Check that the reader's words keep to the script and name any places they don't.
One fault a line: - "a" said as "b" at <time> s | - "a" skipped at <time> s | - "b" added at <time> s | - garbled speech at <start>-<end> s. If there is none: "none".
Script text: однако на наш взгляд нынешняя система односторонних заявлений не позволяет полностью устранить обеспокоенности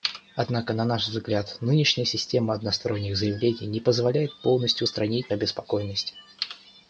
none